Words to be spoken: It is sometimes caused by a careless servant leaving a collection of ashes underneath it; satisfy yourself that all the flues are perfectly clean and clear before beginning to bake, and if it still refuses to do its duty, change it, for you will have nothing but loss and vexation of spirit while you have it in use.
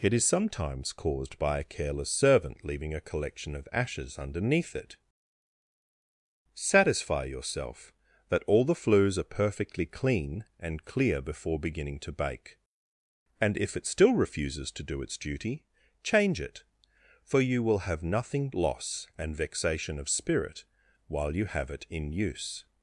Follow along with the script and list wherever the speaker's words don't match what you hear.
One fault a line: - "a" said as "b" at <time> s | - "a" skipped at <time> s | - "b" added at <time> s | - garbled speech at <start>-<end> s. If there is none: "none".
- "but" skipped at 18.5 s